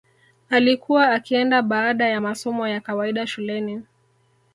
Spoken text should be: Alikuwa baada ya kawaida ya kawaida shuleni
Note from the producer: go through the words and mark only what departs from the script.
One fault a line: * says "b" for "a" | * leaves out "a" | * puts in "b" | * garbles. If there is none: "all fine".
* puts in "akienda"
* says "masomo" for "kawaida"